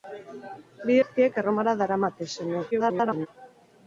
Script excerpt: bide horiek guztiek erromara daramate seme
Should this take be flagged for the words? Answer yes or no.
yes